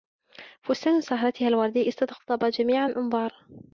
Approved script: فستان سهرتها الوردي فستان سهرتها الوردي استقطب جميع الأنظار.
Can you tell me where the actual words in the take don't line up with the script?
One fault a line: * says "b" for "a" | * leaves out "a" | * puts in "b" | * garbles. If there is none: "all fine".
* leaves out "فستان سهرتها الوردي"